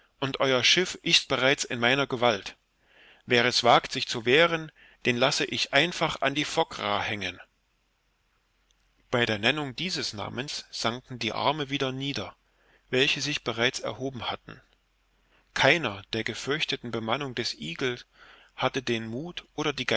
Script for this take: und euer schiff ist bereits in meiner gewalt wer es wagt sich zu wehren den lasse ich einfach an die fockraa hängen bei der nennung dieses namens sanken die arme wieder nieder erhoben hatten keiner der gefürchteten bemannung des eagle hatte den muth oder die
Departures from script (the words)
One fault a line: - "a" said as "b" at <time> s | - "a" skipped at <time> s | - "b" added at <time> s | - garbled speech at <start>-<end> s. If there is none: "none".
- "welche sich bereits" added at 12.9 s